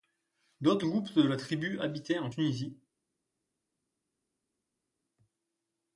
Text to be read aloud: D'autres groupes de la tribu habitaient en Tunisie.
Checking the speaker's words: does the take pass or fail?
pass